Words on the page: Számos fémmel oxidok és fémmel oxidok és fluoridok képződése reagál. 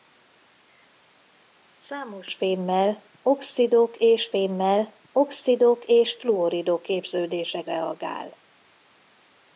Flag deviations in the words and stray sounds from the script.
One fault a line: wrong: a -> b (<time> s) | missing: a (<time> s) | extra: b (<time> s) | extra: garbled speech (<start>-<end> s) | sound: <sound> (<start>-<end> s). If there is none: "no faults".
no faults